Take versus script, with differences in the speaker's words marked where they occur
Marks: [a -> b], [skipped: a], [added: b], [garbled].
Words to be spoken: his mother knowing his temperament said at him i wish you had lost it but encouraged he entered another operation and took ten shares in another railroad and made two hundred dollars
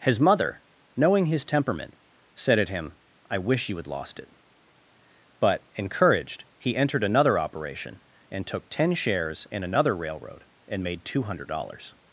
his mother knowing his temperament said at him i wish you had lost it but encouraged he entered another operation and took ten shares in another railroad and made two hundred dollars